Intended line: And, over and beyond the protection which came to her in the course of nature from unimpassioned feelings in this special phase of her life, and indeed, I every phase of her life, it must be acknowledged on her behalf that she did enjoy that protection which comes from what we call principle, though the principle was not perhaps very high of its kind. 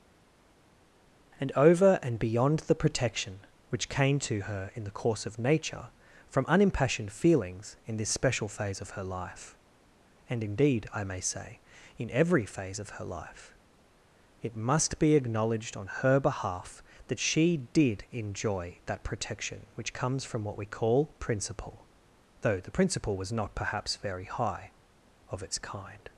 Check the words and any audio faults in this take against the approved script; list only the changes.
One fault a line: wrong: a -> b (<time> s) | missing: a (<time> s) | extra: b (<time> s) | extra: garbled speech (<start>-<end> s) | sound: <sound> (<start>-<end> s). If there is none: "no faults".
extra: may say in (11.0 s)